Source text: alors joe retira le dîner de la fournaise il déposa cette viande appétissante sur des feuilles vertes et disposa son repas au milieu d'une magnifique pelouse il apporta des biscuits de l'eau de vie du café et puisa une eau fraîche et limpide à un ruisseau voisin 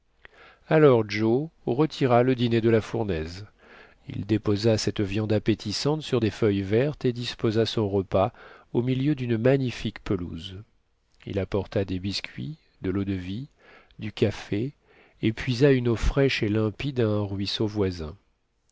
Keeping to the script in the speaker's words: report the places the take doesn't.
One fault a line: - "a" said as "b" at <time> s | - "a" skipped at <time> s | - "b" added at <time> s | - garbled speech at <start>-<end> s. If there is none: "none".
none